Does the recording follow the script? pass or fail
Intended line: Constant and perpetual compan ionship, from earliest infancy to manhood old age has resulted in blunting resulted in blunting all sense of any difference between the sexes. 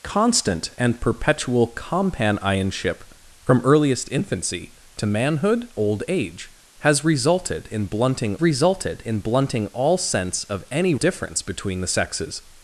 pass